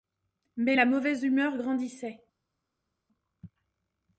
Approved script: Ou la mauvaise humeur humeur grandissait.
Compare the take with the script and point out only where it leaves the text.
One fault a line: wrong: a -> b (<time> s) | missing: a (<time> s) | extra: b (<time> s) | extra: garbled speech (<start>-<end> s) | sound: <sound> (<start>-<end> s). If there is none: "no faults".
wrong: Ou -> Mais (0.6 s)
missing: humeur (1.6 s)